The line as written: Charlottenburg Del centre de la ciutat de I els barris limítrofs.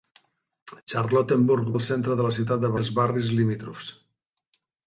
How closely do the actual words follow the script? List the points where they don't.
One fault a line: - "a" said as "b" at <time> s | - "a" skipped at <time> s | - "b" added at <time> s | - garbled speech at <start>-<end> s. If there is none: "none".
none